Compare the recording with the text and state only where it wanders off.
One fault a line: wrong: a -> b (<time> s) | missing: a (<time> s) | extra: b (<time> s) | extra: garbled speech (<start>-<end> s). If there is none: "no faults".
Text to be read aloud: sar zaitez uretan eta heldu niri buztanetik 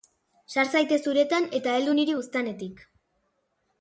no faults